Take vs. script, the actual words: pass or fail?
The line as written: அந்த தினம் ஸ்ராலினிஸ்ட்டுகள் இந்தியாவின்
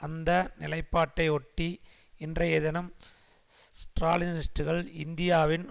fail